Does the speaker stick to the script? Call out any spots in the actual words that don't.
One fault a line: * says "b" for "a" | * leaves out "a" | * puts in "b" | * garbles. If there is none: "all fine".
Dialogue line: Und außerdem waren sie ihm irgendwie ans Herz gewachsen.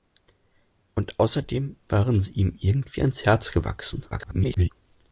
* garbles